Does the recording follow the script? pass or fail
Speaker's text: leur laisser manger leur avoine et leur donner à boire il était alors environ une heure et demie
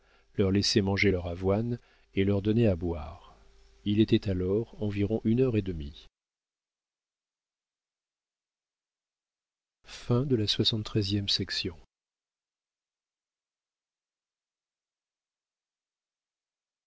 pass